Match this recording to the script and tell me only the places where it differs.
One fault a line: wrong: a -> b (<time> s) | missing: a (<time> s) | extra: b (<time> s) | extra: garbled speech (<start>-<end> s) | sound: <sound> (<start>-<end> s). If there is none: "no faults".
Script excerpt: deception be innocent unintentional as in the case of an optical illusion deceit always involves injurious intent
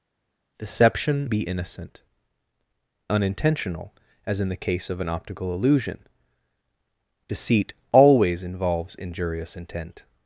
no faults